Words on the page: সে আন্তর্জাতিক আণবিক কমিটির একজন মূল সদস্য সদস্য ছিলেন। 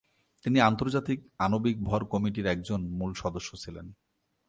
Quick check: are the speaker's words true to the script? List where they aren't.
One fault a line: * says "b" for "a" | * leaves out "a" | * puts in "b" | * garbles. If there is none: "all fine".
* says "তিনি" for "সে"
* puts in "ভর"
* leaves out "সদস্য"